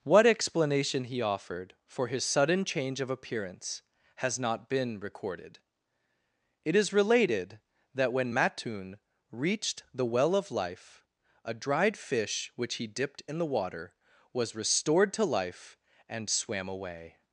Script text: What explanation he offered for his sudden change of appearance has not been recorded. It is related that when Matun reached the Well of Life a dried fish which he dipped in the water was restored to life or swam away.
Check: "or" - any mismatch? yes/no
yes